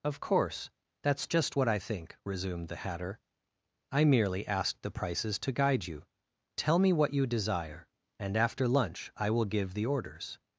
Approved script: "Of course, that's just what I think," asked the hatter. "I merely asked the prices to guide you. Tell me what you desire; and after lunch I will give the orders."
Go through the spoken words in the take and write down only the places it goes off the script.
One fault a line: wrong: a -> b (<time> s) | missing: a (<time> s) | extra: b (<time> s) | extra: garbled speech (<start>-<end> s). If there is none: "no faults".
wrong: asked -> resumed (2.2 s)